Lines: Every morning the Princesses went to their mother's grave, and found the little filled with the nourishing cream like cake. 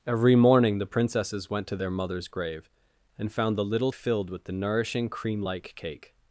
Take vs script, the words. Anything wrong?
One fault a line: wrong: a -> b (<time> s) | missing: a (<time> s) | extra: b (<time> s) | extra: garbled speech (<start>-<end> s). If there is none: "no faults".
no faults